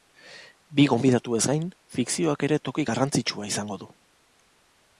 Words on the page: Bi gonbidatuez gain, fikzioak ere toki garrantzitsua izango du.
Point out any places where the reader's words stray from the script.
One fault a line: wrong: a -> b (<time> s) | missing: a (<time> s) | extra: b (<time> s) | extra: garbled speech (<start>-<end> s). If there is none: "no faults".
no faults